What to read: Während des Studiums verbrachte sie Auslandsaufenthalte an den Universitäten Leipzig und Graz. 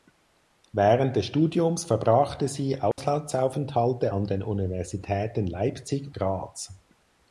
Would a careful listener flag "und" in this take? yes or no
yes